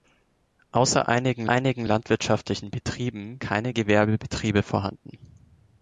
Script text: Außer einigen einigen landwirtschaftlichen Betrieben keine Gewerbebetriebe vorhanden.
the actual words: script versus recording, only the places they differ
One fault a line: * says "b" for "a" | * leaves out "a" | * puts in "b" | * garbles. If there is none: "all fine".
all fine